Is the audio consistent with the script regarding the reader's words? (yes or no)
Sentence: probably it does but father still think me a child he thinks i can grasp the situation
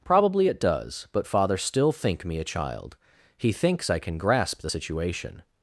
yes